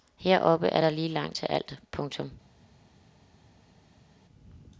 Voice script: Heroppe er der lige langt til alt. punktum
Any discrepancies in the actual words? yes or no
no